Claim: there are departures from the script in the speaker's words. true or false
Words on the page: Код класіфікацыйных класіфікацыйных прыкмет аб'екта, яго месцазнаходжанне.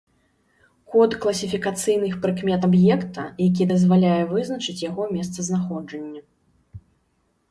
true